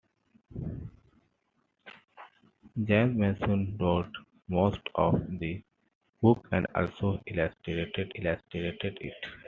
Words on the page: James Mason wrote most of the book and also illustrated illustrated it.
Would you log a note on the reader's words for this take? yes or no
no